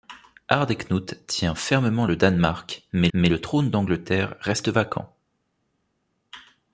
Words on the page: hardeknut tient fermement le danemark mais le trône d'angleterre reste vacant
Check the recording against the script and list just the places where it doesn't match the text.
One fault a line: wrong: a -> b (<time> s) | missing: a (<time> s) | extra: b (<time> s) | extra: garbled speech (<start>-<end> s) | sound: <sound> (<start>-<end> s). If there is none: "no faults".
extra: mais (3.1 s)